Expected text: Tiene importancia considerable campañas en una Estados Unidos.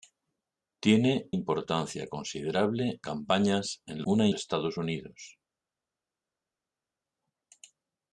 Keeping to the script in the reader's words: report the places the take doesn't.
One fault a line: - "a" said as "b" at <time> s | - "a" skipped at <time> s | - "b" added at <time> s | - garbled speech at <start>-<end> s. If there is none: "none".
none